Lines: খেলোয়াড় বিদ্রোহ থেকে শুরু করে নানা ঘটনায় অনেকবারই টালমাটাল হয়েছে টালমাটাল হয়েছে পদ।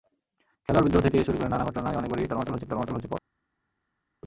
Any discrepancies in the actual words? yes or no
no